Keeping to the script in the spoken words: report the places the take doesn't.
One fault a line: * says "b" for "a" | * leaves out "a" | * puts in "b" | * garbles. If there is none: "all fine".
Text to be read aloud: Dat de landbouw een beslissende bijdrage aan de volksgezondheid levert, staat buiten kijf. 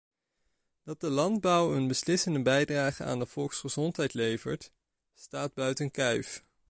all fine